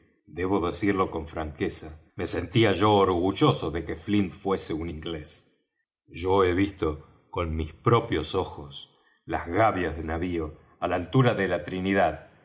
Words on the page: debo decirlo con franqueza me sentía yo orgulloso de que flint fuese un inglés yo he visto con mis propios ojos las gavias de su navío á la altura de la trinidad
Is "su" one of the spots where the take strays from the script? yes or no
yes